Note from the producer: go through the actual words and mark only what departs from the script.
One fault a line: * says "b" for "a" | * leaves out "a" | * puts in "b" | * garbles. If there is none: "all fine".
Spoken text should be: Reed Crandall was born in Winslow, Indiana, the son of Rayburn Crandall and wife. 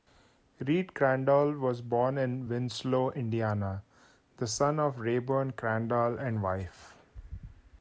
all fine